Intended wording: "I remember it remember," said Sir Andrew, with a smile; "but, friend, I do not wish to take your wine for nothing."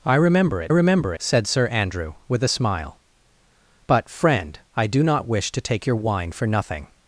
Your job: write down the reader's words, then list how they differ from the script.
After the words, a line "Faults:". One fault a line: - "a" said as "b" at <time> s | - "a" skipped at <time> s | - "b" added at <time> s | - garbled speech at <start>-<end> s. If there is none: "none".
"I remember it remember," said Sir Andrew, with a smile; "but, friend, I do not wish to take your wine for nothing."
Faults:
none